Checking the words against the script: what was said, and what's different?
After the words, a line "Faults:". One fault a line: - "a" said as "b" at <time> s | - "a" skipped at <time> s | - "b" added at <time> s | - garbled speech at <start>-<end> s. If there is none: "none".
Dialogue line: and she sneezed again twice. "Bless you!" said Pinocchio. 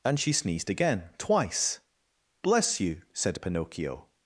and she sneezed again twice. "Bless you!" said Pinocchio.
Faults:
none